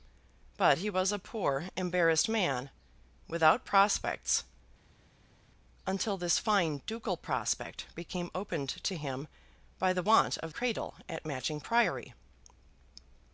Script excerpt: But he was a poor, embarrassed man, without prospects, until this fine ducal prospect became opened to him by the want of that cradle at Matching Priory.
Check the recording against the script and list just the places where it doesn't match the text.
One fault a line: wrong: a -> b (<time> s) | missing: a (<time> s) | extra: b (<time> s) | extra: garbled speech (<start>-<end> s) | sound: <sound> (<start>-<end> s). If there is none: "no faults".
missing: that (10.5 s)